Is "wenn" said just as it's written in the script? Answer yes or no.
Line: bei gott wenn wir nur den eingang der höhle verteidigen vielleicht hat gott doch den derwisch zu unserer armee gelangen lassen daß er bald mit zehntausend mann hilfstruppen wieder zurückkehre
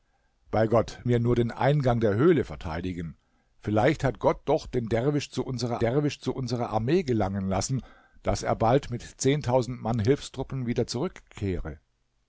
no